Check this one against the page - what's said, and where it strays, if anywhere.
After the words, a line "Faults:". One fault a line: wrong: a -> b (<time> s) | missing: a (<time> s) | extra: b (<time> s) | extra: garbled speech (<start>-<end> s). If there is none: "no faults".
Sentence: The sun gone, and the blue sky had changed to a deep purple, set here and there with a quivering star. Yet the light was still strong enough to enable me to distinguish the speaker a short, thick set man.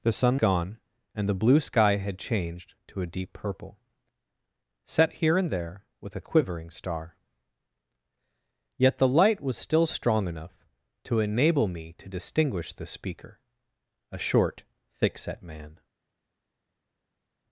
The sun gone, and the blue sky had changed to a deep purple, set here and there with a quivering star. Yet the light was still strong enough to enable me to distinguish the speaker a short, thick set man.
Faults:
no faults